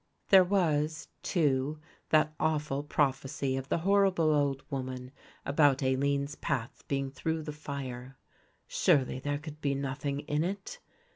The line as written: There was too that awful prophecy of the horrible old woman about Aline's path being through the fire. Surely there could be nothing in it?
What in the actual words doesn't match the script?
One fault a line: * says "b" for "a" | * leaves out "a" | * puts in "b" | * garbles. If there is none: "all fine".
all fine